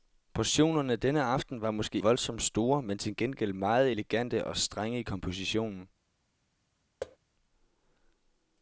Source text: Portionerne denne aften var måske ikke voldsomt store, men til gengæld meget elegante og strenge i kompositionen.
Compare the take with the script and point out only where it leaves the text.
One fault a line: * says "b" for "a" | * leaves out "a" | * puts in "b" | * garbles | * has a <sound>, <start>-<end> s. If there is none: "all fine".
* leaves out "ikke"
* has a thud, 7.0-7.2 s